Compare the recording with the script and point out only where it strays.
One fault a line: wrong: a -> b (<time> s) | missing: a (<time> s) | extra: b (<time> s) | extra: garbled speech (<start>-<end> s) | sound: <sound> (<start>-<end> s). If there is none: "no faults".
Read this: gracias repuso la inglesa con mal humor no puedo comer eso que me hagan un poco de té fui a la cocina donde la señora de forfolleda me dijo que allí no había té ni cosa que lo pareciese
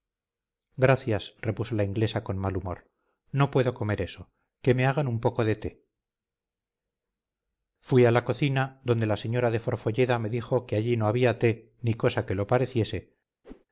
sound: whoosh (13.4-13.7 s)